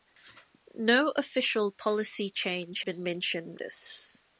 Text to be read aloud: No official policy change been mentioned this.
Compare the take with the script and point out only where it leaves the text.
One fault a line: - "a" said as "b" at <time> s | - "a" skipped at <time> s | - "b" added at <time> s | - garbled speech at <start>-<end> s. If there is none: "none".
none